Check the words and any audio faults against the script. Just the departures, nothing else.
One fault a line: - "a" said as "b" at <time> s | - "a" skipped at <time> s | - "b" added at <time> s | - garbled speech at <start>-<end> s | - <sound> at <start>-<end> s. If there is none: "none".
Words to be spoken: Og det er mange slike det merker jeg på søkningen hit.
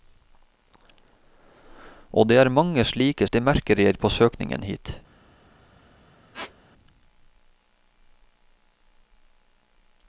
- squeak at 6.3-6.5 s